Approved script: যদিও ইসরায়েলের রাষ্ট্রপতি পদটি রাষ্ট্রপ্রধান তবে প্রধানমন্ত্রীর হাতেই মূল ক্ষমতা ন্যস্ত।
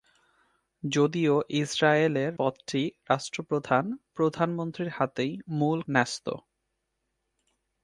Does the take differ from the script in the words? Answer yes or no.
yes